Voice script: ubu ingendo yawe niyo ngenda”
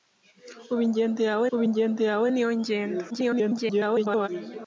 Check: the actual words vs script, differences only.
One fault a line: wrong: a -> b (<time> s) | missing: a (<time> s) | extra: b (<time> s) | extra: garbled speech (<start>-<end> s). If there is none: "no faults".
extra: ubu ingendo yawe (1.5 s)
extra: garbled speech (3.1-4.3 s)